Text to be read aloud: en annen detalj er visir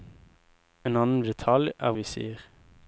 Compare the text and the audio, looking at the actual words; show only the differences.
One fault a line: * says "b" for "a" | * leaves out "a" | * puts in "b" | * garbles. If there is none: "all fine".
all fine